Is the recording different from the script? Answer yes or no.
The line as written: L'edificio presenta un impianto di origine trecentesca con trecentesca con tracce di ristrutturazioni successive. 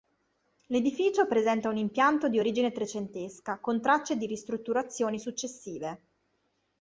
yes